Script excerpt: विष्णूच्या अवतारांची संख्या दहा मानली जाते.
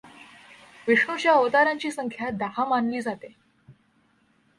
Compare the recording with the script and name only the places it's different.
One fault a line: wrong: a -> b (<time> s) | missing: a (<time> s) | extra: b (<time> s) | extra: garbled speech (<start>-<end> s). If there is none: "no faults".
no faults